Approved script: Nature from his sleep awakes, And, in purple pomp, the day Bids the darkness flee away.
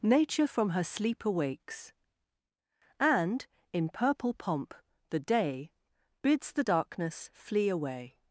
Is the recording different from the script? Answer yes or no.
yes